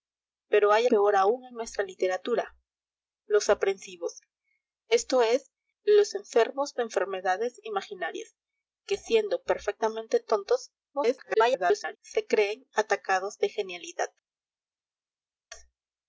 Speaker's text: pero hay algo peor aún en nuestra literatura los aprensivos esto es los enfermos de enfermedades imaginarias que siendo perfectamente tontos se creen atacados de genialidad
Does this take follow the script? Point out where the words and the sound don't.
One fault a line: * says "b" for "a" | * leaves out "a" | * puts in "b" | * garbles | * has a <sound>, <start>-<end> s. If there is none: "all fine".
* leaves out "algo"
* garbles